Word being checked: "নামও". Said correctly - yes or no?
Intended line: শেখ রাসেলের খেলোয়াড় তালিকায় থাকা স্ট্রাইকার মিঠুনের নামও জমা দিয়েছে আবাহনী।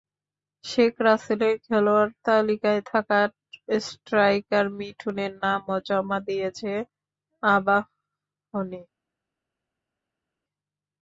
yes